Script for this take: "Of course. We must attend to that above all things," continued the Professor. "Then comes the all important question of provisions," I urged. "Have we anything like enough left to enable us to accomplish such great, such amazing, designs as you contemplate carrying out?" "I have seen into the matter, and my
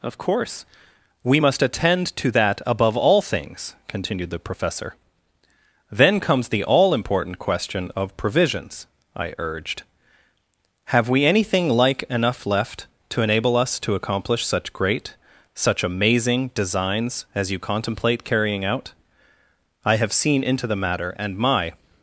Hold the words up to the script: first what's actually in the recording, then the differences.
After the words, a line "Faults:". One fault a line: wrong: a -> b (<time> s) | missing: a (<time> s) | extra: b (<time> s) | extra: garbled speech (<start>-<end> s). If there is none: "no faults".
"Of course. We must attend to that above all things," continued the Professor. "Then comes the all important question of provisions," I urged. "Have we anything like enough left to enable us to accomplish such great, such amazing, designs as you contemplate carrying out?" "I have seen into the matter, and my
Faults:
no faults